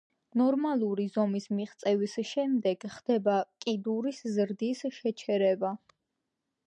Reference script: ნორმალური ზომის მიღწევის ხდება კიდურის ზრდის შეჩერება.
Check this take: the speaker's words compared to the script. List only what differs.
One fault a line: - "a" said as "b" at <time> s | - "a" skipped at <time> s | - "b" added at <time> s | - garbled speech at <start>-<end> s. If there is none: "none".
- "შემდეგ" added at 2.3 s